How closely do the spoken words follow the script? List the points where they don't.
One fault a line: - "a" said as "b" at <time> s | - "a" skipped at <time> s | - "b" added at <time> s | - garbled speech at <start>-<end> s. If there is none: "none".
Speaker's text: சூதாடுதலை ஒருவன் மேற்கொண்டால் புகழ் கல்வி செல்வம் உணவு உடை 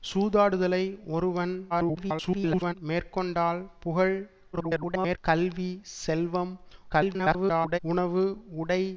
- garbled speech at 1.7-2.7 s
- garbled speech at 4.5-5.2 s
- garbled speech at 6.9-7.8 s